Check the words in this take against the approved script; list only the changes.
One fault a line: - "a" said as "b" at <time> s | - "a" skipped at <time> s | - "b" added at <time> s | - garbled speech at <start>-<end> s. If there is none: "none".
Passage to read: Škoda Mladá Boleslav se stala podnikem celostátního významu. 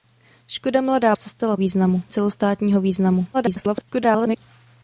- "Boleslav" skipped at 1.1 s
- "podnikem" said as "významu" at 1.6 s
- garbled speech at 3.3-4.4 s